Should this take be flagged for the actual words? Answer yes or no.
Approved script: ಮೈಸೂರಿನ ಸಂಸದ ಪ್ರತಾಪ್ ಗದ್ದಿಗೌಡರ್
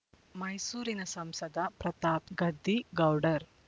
no